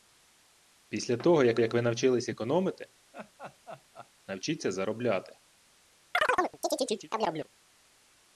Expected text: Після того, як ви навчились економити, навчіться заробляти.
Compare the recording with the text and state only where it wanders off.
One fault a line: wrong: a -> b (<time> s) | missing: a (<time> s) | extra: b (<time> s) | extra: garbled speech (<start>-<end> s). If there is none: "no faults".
extra: як (1.6 s)